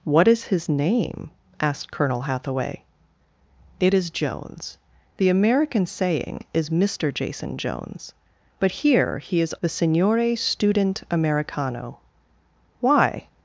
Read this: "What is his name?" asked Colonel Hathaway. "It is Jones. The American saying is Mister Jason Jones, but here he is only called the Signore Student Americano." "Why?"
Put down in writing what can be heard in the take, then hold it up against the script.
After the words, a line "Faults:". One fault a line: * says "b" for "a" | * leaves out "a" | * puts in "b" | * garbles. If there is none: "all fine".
"What is his name?" asked Colonel Hathaway. "It is Jones. The American saying is Mister Jason Jones, but here he is the Signore Student Americano." "Why?"
Faults:
* leaves out "only called"